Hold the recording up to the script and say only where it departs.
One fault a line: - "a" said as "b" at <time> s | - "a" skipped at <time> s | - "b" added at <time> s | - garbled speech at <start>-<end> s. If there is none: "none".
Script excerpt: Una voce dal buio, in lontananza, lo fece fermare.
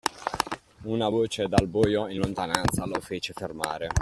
none